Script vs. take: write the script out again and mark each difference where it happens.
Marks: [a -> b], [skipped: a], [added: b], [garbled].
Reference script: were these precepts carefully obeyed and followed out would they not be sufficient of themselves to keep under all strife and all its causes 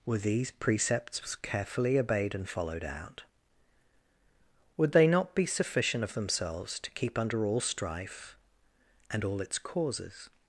were these precepts carefully obeyed and followed out would they not be sufficient of themselves to keep under all strife and all its causes